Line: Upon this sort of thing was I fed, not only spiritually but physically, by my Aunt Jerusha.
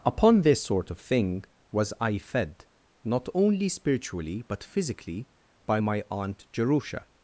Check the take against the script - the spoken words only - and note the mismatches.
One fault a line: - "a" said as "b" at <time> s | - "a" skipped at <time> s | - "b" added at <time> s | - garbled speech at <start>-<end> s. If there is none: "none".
none